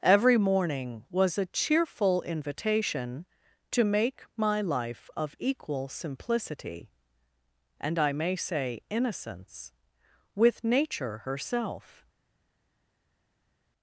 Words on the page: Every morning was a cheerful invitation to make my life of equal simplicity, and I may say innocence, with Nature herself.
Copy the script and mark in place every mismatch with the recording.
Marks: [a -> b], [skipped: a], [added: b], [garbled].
Every morning was a cheerful invitation to make my life of equal simplicity, and I may say innocence, with Nature herself.